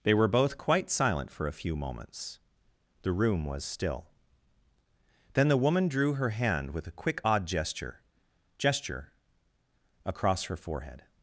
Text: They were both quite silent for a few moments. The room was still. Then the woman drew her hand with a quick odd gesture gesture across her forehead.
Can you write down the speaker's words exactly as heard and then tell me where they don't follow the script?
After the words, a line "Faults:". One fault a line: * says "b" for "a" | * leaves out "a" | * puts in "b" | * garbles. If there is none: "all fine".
They were both quite silent for a few moments. The room was still. Then the woman drew her hand with a quick odd gesture gesture across her forehead.
Faults:
all fine